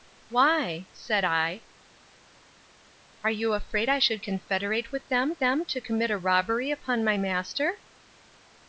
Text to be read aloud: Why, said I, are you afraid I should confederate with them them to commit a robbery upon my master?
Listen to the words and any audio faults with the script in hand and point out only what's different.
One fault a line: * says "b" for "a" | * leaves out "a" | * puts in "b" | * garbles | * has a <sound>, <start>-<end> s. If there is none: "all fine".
all fine